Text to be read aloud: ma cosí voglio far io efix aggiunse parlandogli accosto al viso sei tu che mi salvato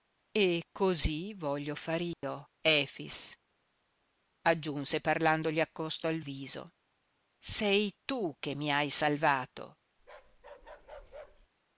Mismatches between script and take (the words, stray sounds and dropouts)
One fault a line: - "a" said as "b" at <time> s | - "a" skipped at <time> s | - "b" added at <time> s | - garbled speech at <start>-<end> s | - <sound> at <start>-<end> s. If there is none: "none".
- "ma" said as "e" at 0.3 s
- dropout at 2.1-2.2 s
- "hai" added at 8.7 s
- bark at 10.0-11.5 s